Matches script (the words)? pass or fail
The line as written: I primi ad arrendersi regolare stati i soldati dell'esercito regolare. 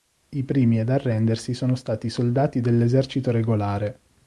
fail